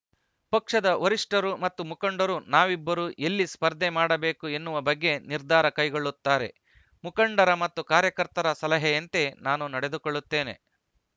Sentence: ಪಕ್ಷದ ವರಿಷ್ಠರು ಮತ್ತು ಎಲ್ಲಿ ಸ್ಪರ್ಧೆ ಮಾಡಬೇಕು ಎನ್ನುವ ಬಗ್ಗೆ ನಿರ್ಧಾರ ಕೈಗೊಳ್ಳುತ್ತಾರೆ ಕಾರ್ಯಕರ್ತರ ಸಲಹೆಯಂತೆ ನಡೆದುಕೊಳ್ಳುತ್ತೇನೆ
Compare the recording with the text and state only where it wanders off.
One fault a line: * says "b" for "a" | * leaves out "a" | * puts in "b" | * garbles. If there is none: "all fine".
* puts in "ಮುಖಂಡರು ನಾವಿಬ್ಬರು"
* puts in "ಮುಖಂಡರ ಮತ್ತು"
* puts in "ನಾನು"